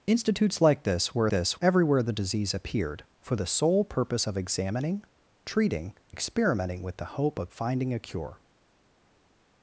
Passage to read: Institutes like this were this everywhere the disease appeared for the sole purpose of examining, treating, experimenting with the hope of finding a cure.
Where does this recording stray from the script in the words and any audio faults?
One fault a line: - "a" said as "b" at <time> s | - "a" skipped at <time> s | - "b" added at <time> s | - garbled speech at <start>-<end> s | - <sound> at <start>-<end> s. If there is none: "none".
none